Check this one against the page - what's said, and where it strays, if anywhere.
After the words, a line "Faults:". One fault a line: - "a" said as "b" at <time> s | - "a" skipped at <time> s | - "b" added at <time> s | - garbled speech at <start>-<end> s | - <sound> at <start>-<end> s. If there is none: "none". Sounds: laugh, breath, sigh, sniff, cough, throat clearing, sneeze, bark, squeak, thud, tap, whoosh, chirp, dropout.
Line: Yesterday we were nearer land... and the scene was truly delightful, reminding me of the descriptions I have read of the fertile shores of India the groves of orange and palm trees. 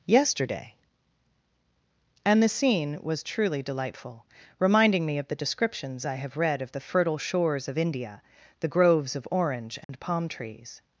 Yesterday... and the scene was truly delightful, reminding me of the descriptions I have read of the fertile shores of India the groves of orange and palm trees.
Faults:
- "we were nearer land" skipped at 0.8 s
- dropout at 9.8-9.9 s